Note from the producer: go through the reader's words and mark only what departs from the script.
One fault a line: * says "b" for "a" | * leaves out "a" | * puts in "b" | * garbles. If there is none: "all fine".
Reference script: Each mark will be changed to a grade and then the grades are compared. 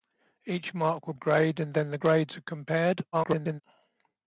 * leaves out "be changed to"
* garbles